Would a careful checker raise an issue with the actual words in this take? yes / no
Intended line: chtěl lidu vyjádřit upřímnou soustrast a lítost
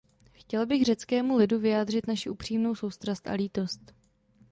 yes